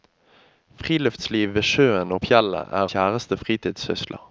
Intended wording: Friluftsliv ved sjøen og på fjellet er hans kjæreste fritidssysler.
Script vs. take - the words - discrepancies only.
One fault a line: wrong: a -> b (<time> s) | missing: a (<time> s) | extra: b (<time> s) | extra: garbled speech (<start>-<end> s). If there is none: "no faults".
missing: på (2.2 s)
missing: hans (2.9 s)